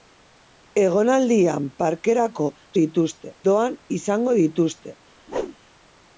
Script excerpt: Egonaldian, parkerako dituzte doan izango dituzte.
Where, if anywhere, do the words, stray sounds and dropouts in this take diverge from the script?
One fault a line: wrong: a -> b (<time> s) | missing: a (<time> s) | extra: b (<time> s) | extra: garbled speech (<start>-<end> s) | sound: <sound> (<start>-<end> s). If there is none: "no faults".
sound: whoosh (5.3-5.6 s)